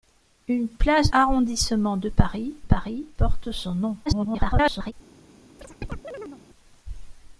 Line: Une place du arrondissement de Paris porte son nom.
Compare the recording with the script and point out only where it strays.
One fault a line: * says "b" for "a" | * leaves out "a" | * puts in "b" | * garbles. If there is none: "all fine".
* leaves out "du"
* puts in "Paris"
* garbles